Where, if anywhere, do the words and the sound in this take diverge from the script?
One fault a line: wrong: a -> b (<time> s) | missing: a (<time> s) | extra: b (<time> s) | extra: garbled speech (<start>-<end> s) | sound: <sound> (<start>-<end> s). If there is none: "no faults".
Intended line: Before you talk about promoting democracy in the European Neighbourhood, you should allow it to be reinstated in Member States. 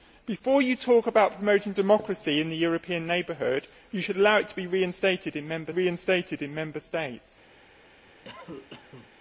extra: reinstated in Member (5.7 s)
sound: cough (8.2-9.1 s)